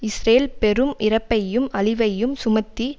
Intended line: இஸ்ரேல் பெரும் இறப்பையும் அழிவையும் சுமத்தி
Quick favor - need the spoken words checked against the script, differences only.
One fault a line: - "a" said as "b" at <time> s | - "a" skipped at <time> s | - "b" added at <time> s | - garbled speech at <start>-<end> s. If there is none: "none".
none